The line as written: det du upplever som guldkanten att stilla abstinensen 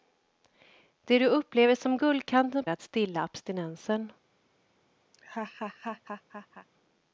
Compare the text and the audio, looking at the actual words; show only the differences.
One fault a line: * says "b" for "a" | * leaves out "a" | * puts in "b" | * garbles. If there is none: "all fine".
all fine